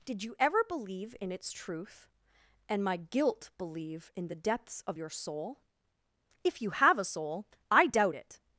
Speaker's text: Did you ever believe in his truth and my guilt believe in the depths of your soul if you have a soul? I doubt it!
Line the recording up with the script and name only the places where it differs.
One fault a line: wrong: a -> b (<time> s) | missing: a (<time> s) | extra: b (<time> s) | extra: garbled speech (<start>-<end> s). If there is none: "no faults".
wrong: his -> its (1.3 s)